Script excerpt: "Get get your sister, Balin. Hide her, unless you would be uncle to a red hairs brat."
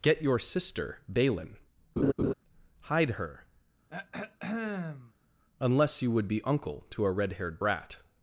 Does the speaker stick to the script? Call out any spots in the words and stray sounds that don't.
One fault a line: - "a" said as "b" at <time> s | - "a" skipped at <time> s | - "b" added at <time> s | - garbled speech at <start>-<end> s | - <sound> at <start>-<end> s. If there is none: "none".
- "get" skipped at 0.2 s
- laugh at 2.0-2.3 s
- throat clearing at 3.9-5.1 s
- "hairs" said as "haired" at 7.3 s